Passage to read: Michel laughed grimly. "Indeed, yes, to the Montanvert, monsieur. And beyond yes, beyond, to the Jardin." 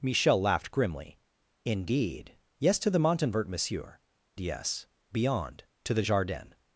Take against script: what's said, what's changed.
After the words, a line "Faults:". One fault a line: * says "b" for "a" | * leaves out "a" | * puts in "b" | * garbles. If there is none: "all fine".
Michel laughed grimly. "Indeed, yes, to the Montanvert, monsieur. Yes, beyond, to the Jardin."
Faults:
* leaves out "And beyond"